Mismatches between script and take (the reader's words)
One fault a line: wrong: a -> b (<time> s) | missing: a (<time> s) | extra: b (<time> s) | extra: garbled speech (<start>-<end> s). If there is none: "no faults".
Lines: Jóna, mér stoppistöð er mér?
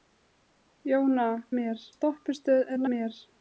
no faults